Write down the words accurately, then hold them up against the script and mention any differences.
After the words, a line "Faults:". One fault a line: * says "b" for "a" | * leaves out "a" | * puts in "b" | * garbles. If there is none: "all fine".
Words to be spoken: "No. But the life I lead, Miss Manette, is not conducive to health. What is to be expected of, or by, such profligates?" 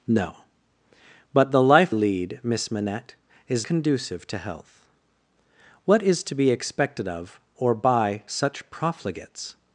"No. But the life lead, Miss Manette, is conducive to health. What is to be expected of, or by, such profligates?"
Faults:
* leaves out "I"
* leaves out "not"